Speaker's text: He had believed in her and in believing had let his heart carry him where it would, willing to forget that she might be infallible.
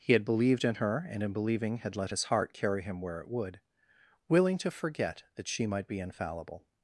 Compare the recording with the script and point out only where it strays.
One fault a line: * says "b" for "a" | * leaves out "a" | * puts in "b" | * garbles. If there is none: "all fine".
all fine